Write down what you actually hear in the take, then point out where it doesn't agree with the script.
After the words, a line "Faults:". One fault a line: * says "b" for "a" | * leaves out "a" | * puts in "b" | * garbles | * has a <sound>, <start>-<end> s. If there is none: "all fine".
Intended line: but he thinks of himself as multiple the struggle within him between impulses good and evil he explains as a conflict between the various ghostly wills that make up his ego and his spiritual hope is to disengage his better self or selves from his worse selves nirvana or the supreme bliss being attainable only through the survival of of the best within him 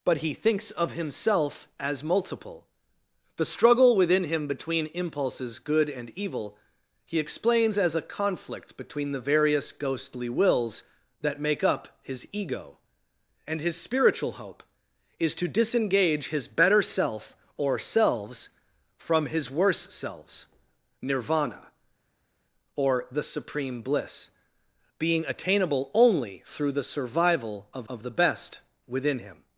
but he thinks of himself as multiple the struggle within him between impulses good and evil he explains as a conflict between the various ghostly wills that make up his ego and his spiritual hope is to disengage his better self or selves from his worse selves nirvana or the supreme bliss being attainable only through the survival of of the best within him
Faults:
all fine